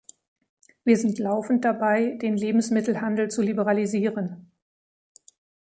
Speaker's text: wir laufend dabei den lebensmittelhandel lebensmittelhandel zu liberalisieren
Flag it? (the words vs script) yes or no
yes